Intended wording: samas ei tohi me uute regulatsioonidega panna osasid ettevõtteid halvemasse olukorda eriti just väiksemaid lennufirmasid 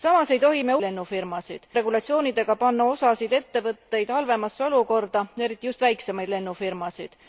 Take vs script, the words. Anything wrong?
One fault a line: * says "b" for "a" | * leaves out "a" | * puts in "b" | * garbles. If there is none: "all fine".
* says "lennufirmasid" for "uute"